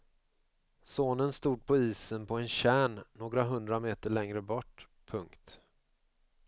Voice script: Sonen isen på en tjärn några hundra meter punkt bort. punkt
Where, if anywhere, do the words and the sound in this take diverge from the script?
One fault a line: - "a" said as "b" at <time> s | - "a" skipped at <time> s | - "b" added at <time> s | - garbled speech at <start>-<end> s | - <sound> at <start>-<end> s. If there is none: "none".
- "stod på" added at 1.3 s
- "punkt" said as "längre" at 4.1 s